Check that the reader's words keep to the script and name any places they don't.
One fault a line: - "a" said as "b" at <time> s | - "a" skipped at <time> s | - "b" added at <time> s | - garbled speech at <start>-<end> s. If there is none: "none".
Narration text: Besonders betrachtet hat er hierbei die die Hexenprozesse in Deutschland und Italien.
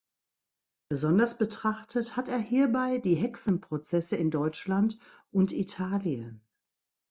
- "die" skipped at 3.2 s